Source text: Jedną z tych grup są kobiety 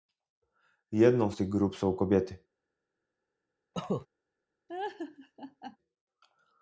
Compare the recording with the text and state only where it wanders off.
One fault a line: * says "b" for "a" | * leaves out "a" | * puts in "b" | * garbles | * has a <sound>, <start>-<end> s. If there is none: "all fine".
* has a cough, 3.7-4.1 s
* has a laugh, 4.7-5.8 s